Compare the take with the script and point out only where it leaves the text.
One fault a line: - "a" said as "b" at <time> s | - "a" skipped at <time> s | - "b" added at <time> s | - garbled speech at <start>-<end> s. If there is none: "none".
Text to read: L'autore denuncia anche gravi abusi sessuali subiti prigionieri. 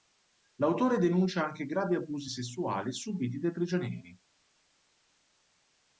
- "dai" added at 3.4 s